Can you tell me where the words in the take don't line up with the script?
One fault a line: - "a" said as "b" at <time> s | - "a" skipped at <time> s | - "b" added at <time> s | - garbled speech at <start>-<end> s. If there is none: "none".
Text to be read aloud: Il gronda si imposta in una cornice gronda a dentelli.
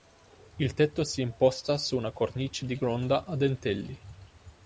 - "gronda" said as "tetto" at 0.7 s
- "in" said as "su" at 1.8 s
- "di" added at 2.6 s